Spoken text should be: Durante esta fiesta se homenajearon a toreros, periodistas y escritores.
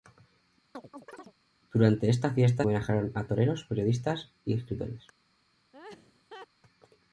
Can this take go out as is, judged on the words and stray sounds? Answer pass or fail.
fail